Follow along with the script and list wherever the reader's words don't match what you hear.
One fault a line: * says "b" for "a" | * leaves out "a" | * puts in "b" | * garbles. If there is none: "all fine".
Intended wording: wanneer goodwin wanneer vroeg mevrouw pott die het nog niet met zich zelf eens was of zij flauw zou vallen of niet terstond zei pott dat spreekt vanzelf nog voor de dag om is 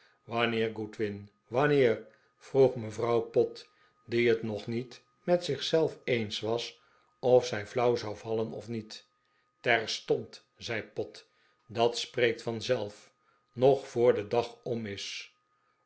all fine